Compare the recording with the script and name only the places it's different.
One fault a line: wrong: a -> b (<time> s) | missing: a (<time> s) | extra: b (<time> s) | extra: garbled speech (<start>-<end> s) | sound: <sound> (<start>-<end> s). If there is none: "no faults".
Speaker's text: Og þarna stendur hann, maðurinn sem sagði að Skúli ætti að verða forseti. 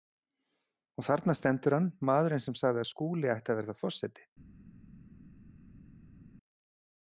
no faults